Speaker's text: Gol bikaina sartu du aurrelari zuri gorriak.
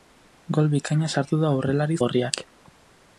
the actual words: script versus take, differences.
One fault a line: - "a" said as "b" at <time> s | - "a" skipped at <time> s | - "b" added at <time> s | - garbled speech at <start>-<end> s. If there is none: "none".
- "zuri" skipped at 2.0 s